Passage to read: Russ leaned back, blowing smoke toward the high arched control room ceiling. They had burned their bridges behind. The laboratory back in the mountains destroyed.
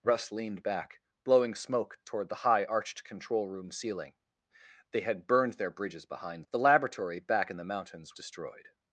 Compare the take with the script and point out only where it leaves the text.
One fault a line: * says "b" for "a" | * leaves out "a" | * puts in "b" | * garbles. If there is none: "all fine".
all fine